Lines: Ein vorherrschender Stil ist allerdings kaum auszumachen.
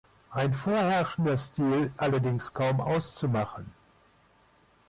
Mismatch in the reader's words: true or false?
true